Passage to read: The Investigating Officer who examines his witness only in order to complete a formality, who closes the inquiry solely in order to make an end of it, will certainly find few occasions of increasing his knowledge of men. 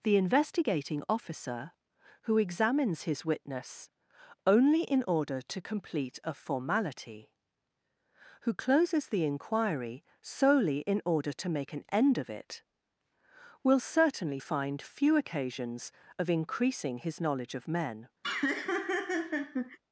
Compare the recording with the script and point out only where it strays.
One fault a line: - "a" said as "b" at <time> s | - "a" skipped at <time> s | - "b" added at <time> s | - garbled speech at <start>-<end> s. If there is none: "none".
none